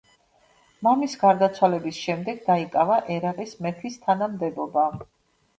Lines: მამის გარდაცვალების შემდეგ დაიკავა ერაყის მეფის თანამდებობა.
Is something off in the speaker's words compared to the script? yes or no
no